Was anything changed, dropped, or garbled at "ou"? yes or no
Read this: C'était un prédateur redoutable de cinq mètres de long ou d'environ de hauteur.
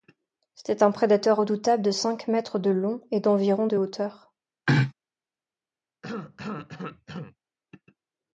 yes